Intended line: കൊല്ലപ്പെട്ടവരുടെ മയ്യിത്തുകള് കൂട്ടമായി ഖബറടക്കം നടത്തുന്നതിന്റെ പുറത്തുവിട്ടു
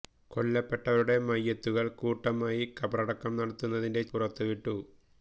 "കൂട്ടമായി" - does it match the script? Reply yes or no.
yes